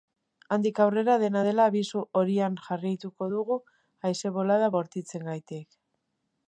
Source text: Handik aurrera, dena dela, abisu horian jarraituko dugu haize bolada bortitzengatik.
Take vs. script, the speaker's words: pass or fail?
pass